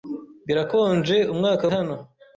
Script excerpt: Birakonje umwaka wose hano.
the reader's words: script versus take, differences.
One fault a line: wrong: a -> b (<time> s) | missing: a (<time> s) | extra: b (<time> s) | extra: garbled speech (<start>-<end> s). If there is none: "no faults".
missing: wose (1.6 s)